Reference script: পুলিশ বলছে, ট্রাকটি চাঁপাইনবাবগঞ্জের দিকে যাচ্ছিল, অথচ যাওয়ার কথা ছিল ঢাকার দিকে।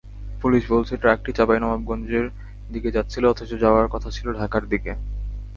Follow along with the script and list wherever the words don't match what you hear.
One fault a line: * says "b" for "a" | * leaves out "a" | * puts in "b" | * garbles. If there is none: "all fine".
all fine